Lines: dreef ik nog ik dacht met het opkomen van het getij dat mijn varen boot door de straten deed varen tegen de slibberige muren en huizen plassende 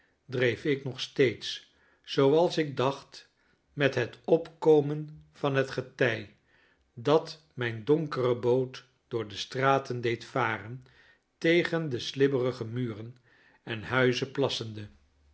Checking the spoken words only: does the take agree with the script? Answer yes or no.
no